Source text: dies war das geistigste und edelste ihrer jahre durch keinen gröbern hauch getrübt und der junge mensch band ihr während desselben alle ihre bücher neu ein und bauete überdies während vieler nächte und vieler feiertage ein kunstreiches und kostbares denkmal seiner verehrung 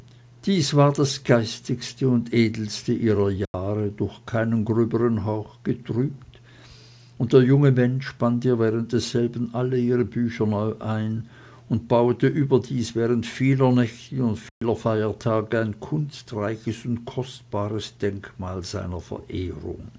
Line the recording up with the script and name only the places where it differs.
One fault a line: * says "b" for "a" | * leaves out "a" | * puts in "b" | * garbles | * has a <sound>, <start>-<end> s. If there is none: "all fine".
* has a dropout, 3.5-3.5 s
* has a dropout, 14.5-14.6 s